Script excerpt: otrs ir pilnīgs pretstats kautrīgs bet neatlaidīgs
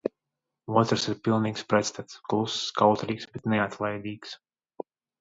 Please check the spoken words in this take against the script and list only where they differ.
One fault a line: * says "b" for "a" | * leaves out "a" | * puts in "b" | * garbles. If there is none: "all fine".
* puts in "kluss"